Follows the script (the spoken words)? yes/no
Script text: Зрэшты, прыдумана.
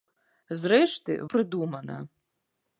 yes